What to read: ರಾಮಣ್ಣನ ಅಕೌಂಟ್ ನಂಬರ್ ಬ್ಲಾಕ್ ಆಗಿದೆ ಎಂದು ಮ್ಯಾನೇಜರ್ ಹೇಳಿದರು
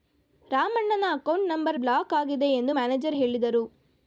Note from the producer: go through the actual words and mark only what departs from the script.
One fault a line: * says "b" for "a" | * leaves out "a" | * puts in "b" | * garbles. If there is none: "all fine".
all fine